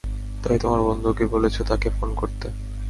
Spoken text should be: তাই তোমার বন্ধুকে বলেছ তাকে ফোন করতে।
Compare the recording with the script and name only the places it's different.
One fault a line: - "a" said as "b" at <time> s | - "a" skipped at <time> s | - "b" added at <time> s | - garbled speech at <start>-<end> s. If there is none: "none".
none